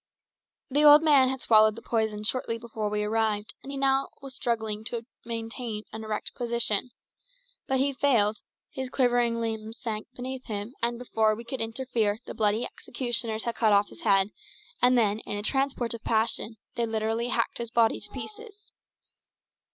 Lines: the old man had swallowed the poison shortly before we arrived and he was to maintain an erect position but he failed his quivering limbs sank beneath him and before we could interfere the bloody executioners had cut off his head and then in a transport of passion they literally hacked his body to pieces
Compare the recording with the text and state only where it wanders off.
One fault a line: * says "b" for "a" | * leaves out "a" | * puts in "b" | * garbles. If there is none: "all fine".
* puts in "now struggling"